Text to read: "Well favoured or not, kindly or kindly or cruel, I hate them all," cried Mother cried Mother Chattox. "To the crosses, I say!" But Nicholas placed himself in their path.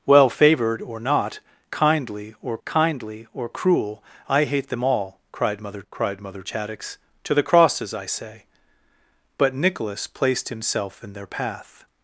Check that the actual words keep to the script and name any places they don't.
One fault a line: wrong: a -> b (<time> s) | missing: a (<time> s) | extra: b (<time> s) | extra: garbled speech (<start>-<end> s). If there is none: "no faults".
no faults